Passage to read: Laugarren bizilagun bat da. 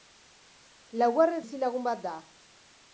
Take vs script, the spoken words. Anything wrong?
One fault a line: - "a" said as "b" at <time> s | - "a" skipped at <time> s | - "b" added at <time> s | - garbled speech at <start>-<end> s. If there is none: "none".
none